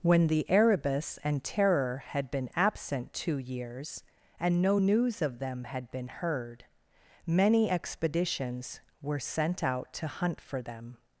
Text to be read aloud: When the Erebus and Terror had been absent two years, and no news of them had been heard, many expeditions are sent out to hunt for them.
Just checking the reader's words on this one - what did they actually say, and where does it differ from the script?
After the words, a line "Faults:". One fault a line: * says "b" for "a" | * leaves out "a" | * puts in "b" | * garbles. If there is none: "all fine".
When the Erebus and Terror had been absent two years, and no news of them had been heard, many expeditions were sent out to hunt for them.
Faults:
* says "were" for "are"